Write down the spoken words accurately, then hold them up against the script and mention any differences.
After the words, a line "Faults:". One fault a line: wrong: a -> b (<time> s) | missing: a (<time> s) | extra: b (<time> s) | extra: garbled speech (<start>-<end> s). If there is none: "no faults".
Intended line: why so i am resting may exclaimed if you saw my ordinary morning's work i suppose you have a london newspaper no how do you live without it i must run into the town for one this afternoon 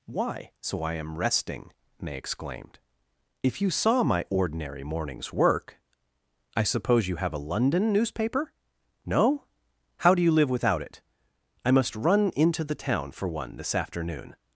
why so i am resting may exclaimed if you saw my ordinary morning's work i suppose you have a london newspaper no how do you live without it i must run into the town for one this afternoon
Faults:
no faults